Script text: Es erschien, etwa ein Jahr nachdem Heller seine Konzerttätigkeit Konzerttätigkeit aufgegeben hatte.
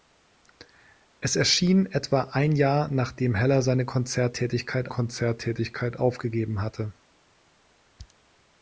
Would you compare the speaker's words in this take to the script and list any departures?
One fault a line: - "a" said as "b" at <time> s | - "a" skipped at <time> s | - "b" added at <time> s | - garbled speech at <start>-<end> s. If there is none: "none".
none